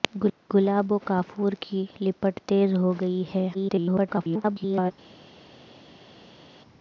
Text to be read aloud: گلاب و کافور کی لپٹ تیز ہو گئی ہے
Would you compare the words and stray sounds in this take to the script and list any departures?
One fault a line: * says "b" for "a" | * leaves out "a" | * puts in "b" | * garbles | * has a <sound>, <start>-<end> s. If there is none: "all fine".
* garbles